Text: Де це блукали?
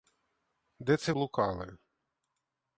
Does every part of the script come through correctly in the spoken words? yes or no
yes